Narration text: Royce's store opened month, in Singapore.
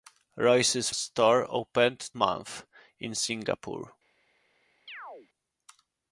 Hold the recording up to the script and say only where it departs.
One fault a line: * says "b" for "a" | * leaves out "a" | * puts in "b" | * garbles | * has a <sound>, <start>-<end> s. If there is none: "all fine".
* has a chirp, 4.9-5.3 s